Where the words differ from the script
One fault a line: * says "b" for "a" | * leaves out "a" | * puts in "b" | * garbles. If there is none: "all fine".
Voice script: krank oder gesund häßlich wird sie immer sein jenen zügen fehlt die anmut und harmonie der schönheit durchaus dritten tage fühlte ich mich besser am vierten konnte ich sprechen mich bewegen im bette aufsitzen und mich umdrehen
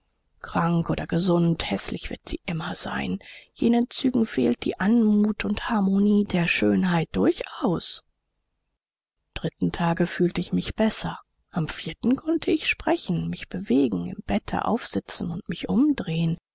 all fine